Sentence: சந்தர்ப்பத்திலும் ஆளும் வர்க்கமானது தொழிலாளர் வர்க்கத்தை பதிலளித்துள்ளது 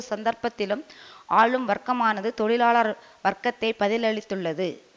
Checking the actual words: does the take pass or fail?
pass